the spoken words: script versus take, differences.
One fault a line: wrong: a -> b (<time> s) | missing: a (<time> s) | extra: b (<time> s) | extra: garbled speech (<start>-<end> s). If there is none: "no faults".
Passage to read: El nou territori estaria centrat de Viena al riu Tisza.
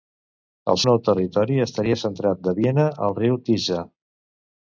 no faults